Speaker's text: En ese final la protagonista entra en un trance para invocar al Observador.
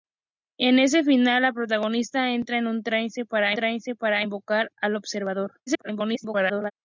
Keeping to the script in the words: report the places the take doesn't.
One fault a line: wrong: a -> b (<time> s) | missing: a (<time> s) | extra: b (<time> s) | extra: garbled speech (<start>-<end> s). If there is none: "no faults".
extra: trance para (3.5 s)
extra: garbled speech (5.7-6.7 s)